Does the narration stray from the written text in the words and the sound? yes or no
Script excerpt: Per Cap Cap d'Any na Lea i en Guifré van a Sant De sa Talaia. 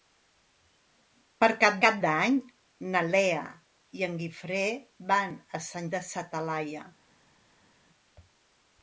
no